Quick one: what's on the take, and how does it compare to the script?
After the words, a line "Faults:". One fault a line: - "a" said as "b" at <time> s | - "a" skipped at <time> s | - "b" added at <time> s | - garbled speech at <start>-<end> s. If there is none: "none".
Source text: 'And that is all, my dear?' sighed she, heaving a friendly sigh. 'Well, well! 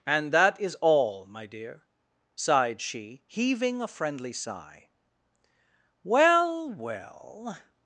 'And that is all, my dear?' sighed she, heaving a friendly sigh. 'Well, well!
Faults:
none